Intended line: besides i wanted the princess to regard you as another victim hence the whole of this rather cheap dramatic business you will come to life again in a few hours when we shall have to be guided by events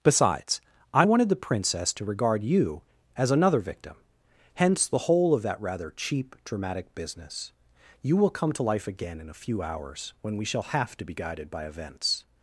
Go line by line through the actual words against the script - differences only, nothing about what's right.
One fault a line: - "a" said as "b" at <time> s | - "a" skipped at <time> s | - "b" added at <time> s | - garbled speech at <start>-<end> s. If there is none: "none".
- "this" said as "that" at 5.4 s